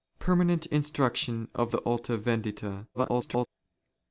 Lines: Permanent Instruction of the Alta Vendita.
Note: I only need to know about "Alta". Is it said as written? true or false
true